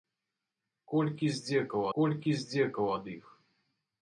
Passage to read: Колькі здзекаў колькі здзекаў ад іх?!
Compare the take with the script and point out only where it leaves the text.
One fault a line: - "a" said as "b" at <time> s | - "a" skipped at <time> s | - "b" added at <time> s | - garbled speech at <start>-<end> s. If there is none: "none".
none